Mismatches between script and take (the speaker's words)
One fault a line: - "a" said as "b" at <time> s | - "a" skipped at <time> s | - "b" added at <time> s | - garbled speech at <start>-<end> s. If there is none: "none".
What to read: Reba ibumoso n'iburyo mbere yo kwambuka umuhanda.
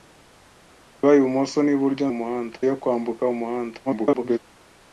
- "mbere" said as "umuhanda" at 2.1 s
- garbled speech at 3.9-4.4 s